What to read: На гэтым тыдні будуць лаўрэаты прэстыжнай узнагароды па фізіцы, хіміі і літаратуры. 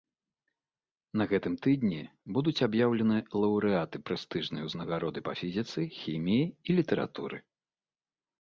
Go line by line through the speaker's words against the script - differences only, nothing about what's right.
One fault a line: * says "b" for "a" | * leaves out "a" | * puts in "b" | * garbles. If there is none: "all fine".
* puts in "аб'яўлены"